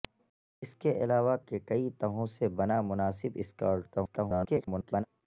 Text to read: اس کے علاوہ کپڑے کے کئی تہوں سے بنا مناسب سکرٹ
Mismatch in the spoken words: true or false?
true